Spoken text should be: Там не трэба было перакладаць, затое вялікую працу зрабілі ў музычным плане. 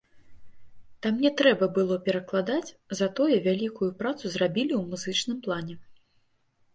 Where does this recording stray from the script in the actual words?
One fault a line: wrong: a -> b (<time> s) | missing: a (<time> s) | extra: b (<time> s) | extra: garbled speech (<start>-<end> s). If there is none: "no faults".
no faults